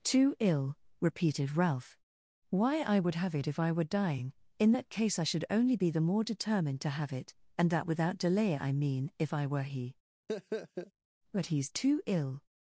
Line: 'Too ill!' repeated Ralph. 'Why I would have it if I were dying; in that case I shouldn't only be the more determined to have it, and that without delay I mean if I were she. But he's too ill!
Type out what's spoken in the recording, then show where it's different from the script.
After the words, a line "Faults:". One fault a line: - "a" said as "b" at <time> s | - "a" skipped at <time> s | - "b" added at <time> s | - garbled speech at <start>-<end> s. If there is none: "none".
'Too ill!' repeated Ralph. 'Why I would have it if I were dying; in that case I should only be the more determined to have it, and that without delay I mean if I were he. But he's too ill!
Faults:
- "shouldn't" said as "should" at 5.3 s
- "she" said as "he" at 9.6 s